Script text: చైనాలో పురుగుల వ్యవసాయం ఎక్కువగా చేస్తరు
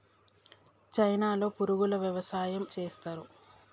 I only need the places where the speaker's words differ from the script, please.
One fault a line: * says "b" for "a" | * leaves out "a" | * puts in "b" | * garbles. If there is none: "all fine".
* leaves out "ఎక్కువగా"